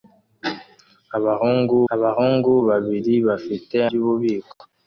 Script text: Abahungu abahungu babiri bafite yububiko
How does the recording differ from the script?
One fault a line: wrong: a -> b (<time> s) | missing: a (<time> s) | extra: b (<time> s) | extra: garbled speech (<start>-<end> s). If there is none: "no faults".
no faults